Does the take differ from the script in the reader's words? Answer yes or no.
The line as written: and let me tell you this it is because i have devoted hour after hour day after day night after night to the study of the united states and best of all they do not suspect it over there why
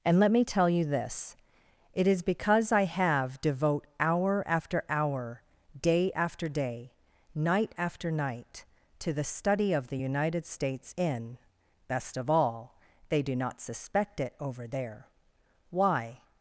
yes